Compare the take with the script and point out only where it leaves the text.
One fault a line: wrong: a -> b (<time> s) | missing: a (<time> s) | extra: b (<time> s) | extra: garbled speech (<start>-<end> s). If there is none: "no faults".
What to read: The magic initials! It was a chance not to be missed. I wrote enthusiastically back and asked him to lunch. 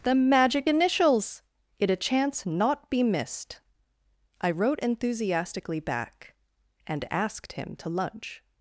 missing: was (1.9 s)
missing: to (2.9 s)